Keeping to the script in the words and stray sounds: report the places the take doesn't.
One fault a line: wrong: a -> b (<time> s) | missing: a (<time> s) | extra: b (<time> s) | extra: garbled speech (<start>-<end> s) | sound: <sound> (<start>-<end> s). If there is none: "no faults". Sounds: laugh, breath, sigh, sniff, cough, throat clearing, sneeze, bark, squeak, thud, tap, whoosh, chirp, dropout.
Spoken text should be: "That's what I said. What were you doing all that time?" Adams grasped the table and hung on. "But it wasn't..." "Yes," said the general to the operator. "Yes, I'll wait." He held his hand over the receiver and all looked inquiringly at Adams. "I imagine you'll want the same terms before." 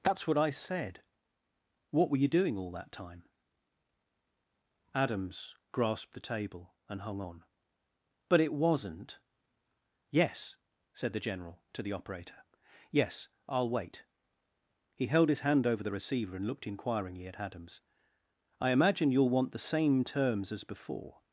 missing: all (16.5 s)
extra: as (20.5 s)